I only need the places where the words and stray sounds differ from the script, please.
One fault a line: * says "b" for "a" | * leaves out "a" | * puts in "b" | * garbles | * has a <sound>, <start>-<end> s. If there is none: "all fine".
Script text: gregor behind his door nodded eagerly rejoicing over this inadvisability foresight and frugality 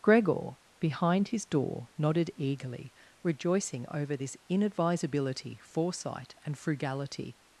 all fine